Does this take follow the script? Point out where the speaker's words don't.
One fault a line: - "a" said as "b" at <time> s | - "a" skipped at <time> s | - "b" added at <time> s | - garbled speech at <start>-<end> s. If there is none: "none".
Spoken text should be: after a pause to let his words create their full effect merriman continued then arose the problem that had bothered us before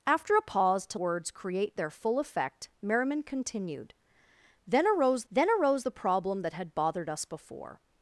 - "let his" skipped at 1.0 s
- "then arose" added at 5.3 s